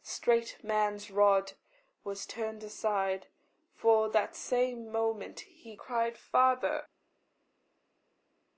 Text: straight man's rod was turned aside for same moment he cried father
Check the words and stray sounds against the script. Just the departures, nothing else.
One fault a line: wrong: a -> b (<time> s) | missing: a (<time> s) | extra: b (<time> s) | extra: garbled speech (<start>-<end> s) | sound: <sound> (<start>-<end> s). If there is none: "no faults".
extra: that (4.1 s)